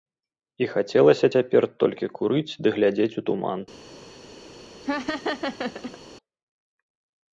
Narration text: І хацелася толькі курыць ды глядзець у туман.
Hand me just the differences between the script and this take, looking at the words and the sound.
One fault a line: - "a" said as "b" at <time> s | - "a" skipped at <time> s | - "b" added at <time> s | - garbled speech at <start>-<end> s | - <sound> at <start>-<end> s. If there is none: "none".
- "цяпер" added at 1.3 s
- laugh at 4.8-6.0 s